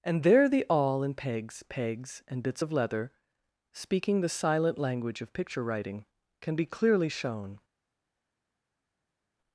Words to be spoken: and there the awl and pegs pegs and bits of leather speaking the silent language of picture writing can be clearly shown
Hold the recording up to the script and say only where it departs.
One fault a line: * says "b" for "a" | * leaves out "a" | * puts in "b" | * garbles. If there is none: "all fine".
all fine